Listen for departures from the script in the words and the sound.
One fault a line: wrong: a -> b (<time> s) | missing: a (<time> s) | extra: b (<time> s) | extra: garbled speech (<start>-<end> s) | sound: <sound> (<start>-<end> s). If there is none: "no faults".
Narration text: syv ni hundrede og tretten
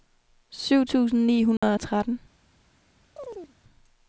extra: tusind (0.8 s)
sound: dropout (1.6-1.6 s)
sound: chirp (3.2-3.5 s)